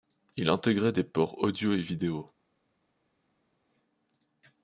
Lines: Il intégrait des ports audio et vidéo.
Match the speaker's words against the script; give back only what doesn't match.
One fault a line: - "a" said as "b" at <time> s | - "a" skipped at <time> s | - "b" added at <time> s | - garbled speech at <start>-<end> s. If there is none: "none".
none